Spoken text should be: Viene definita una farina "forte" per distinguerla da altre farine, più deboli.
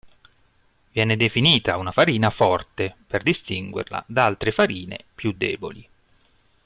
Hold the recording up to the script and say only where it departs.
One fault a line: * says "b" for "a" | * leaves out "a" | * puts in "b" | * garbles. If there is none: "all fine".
all fine